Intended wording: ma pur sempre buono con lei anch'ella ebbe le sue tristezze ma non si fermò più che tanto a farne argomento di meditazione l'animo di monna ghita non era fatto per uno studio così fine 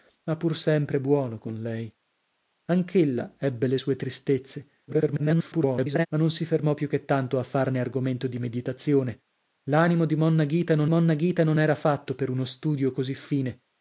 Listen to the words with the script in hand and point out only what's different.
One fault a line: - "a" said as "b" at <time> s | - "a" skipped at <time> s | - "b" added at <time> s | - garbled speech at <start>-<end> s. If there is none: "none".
- garbled speech at 4.9-6.1 s
- "monna ghita non" added at 10.9 s